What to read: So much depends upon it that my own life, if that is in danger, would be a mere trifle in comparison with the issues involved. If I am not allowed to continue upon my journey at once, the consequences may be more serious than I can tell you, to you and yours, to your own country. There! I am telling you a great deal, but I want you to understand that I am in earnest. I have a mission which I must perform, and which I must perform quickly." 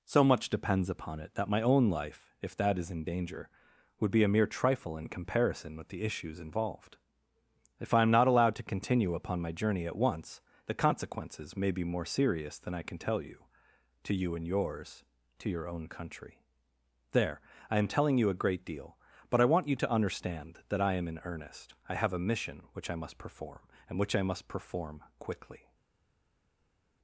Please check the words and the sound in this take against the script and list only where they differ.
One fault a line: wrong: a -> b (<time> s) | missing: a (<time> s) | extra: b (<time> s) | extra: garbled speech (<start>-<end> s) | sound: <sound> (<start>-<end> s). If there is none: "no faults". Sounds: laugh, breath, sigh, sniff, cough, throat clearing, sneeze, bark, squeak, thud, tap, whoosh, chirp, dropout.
no faults